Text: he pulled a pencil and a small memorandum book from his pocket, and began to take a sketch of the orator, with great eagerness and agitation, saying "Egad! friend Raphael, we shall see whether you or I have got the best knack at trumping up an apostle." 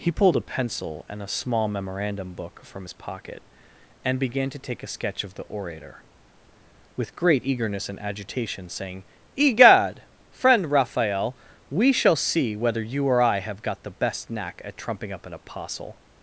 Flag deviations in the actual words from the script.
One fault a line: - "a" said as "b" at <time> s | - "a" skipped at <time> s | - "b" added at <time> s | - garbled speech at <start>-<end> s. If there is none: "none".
none